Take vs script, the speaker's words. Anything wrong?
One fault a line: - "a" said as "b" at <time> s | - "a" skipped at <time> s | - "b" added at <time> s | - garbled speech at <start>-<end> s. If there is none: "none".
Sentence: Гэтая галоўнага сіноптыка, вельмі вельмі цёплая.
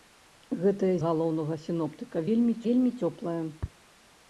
none